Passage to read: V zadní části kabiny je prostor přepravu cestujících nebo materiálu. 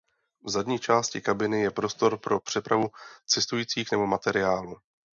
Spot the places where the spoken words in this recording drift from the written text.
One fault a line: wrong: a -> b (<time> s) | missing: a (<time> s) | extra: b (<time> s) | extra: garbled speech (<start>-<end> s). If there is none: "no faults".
extra: pro (2.2 s)